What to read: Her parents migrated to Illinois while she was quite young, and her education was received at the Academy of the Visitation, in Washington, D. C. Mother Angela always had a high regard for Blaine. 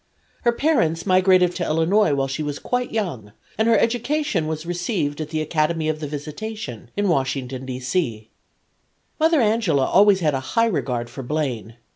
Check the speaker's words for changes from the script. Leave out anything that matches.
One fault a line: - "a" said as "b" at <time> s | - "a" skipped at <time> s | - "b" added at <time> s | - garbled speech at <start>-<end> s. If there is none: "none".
none